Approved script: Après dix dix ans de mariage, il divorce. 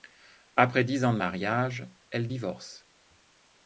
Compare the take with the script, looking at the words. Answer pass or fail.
fail